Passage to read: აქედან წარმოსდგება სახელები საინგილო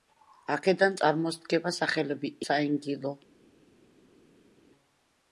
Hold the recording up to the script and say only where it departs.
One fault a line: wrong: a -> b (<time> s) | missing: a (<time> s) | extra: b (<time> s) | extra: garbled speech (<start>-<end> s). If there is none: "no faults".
no faults